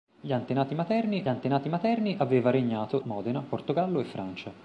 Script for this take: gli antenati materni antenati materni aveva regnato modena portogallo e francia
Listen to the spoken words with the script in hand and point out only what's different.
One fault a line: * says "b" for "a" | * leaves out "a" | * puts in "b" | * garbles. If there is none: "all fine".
all fine